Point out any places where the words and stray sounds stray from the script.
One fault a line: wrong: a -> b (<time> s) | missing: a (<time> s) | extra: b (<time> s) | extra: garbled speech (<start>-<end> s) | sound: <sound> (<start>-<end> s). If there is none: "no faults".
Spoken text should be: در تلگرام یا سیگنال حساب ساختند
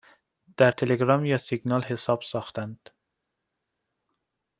no faults